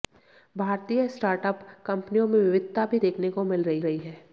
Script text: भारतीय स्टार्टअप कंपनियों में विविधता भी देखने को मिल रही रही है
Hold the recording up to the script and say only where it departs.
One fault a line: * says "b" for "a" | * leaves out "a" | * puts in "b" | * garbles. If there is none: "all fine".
all fine